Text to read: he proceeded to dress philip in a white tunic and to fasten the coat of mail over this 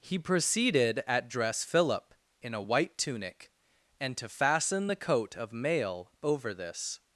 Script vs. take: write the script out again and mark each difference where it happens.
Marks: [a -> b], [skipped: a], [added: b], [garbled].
he proceeded [to -> at] dress philip in a white tunic and to fasten the coat of mail over this